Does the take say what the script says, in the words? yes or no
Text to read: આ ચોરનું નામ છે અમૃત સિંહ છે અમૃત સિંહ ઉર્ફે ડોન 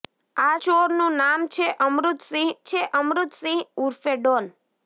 yes